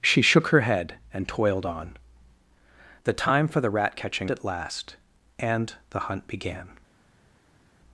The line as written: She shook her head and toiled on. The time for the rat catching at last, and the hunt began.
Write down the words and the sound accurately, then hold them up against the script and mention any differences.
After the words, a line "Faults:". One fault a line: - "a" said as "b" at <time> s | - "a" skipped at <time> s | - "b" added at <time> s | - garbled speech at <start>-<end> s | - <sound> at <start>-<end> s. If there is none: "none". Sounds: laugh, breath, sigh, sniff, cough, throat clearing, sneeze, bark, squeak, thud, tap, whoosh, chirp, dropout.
She shook her head and toiled on. The time for the rat catching at last, and the hunt began.
Faults:
none